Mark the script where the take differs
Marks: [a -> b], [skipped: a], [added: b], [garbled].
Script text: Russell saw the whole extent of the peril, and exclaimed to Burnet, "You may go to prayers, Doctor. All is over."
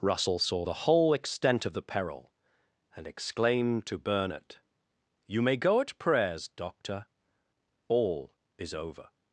Russell saw the whole extent of the peril, and exclaimed to Burnet, "You may go [to -> at] prayers, Doctor. All is over."